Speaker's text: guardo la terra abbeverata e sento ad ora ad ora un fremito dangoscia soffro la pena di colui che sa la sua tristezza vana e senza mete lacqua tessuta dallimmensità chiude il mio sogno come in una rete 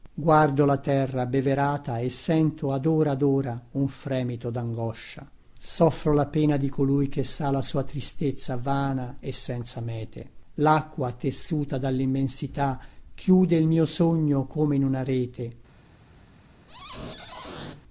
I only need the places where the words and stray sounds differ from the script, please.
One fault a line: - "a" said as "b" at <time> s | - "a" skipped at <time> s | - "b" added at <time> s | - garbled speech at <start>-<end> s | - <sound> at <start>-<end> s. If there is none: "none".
- squeak at 16.7-17.8 s